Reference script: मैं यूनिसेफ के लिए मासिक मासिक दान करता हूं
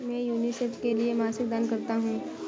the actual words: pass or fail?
fail